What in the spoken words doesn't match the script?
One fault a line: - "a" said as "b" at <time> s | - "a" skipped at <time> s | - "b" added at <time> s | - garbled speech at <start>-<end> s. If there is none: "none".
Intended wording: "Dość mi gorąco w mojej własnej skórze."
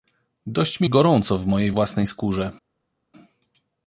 none